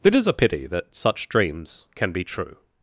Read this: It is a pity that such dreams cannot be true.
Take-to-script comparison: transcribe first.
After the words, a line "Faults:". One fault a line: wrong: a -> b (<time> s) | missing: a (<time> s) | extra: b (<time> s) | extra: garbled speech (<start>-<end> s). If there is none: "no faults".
It is a pity that such dreams can be true.
Faults:
wrong: cannot -> can (2.0 s)